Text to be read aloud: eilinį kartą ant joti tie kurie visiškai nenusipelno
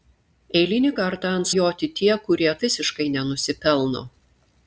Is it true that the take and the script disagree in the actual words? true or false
false